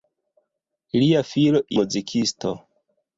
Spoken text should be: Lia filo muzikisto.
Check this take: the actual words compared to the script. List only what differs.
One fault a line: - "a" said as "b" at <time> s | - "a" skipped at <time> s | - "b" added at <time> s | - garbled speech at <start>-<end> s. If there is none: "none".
none